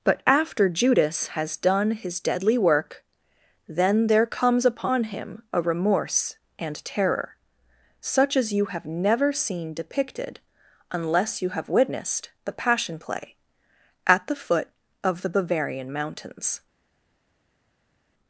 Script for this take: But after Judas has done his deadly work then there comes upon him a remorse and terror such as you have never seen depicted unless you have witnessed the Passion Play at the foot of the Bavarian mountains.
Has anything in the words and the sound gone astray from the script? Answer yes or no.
no